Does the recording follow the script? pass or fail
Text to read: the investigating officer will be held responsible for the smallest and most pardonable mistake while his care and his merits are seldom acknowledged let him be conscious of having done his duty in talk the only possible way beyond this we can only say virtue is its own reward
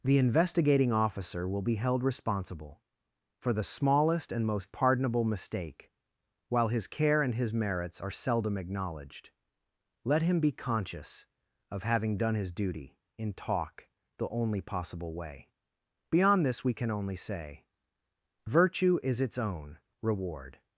pass